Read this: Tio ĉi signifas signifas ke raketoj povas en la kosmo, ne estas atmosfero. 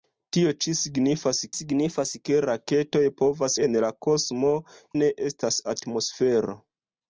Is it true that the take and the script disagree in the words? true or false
false